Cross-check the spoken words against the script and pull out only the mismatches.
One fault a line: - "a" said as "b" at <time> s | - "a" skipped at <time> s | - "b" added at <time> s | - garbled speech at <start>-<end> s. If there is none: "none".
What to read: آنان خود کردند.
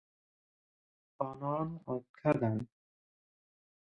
none